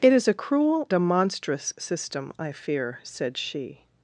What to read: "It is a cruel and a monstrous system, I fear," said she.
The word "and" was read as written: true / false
false